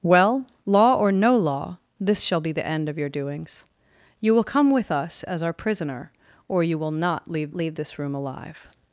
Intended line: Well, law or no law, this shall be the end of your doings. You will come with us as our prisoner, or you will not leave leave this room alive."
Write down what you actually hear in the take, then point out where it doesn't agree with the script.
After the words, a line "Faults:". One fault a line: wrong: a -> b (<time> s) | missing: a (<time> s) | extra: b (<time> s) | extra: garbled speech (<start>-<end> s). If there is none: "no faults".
Well, law or no law, this shall be the end of your doings. You will come with us as our prisoner, or you will not leave leave this room alive."
Faults:
no faults